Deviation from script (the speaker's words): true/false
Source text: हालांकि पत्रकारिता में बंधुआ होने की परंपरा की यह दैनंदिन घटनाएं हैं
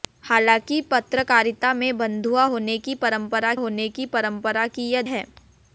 true